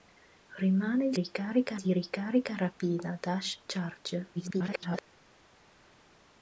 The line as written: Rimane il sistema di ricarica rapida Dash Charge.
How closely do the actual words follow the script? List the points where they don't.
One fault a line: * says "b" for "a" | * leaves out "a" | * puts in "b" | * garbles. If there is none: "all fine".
* says "ricarica" for "sistema"
* garbles